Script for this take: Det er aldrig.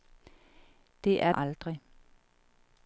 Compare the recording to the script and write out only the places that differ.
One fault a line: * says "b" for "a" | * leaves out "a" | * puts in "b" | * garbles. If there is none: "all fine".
all fine